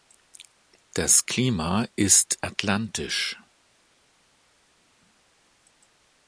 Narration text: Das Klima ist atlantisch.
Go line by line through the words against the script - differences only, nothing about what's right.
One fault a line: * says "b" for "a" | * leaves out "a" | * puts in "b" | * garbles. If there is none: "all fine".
all fine